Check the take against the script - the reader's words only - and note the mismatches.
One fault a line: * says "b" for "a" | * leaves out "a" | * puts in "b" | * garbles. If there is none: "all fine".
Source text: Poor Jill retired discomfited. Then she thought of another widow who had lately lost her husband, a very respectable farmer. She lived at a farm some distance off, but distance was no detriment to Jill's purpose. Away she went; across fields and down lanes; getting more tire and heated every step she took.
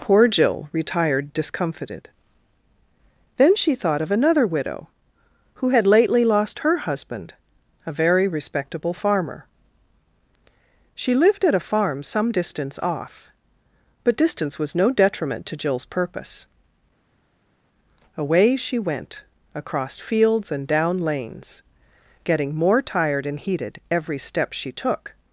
* says "tired" for "tire"